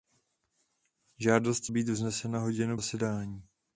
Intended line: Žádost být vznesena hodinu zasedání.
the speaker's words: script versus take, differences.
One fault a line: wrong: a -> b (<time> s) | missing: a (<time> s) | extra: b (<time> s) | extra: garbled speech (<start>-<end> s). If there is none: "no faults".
no faults